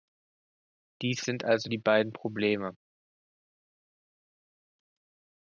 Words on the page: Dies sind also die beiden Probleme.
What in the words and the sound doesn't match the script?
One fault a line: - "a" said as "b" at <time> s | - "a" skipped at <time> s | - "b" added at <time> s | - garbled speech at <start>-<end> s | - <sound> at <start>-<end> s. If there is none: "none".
none